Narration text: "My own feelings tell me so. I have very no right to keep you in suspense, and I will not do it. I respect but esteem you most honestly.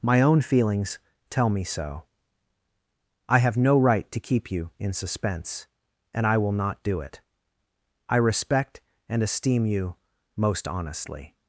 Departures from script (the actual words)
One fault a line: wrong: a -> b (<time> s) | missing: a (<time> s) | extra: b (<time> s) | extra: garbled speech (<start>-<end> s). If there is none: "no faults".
missing: very (3.5 s)
wrong: but -> and (9.1 s)